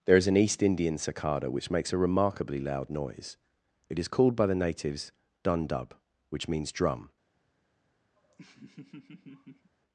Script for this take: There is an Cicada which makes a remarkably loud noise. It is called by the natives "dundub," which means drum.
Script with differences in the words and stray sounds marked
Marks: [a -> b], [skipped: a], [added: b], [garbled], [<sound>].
There is an [added: East Indian] Cicada which makes a remarkably loud noise. It is called by the natives "dundub," which means drum. [laugh]